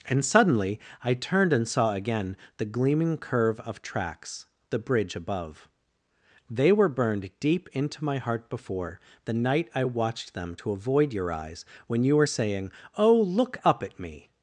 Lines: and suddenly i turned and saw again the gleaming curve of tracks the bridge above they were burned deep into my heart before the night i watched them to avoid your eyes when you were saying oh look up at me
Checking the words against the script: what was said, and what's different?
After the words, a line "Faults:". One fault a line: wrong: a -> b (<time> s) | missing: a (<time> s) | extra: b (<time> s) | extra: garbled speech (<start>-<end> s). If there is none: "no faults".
and suddenly i turned and saw again the gleaming curve of tracks the bridge above they were burned deep into my heart before the night i watched them to avoid your eyes when you were saying oh look up at me
Faults:
no faults